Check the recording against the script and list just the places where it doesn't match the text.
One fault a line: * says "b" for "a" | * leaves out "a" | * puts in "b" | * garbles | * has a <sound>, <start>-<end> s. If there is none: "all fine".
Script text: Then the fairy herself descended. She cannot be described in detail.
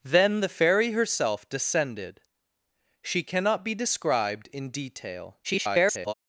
* garbles